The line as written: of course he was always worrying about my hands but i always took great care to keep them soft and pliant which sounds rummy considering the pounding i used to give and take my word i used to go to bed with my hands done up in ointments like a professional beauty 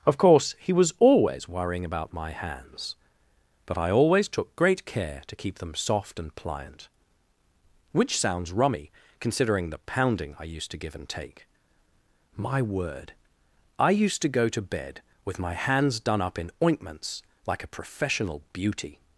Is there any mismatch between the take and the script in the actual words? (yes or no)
no